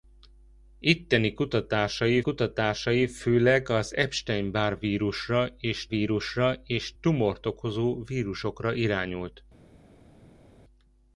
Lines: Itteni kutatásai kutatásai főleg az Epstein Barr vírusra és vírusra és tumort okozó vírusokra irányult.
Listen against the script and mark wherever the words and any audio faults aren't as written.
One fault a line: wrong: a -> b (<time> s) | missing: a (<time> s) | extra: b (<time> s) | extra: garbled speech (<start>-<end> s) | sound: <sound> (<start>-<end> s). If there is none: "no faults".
no faults